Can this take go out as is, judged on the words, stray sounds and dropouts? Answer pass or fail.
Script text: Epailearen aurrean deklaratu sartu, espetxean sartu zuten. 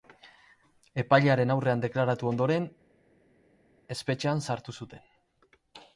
fail